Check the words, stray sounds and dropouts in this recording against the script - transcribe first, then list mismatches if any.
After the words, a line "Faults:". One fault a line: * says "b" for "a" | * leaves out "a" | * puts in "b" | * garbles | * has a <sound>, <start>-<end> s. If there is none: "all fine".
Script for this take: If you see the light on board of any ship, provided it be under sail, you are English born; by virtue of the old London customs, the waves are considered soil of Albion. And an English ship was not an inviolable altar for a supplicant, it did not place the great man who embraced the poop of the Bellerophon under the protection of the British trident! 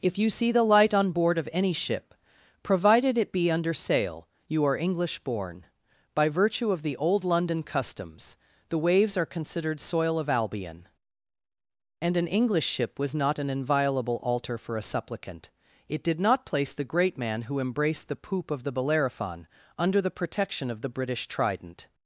If you see the light on board of any ship, provided it be under sail, you are English born; by virtue of the old London customs, the waves are considered soil of Albion. And an English ship was not an inviolable altar for a supplicant, it did not place the great man who embraced the poop of the Bellerophon under the protection of the British trident!
Faults:
all fine